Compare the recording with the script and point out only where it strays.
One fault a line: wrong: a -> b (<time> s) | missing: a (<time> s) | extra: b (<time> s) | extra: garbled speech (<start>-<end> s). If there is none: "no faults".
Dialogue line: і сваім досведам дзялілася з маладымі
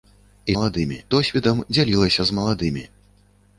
wrong: сваім -> маладымі (0.6 s)